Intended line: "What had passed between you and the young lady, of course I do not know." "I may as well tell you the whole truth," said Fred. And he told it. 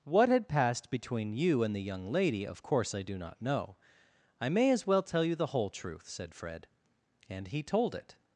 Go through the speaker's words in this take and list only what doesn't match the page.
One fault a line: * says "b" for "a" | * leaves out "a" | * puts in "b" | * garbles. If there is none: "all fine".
all fine